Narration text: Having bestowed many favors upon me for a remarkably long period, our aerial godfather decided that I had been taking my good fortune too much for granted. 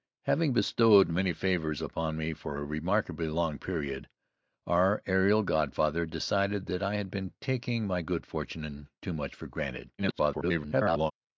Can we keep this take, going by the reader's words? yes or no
no